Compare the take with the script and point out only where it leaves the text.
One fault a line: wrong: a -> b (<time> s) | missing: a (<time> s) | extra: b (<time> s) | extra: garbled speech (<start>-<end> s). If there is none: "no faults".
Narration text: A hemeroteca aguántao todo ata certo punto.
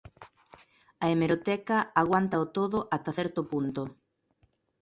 no faults